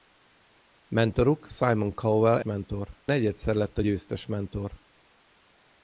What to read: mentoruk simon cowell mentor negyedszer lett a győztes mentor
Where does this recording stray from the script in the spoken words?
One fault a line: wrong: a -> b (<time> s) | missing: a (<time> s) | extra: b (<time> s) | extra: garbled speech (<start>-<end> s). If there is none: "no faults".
no faults